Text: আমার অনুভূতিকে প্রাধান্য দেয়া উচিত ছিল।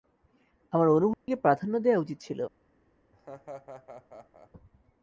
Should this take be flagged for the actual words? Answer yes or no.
no